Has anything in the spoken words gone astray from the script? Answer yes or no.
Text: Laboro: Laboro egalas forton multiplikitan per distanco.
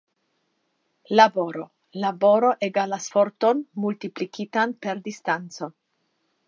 no